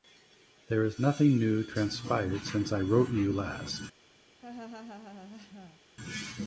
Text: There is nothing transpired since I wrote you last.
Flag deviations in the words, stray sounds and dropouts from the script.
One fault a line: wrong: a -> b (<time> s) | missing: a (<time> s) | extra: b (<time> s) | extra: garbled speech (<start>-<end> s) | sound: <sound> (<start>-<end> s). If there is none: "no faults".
extra: new (1.4 s)
sound: laugh (4.4-5.8 s)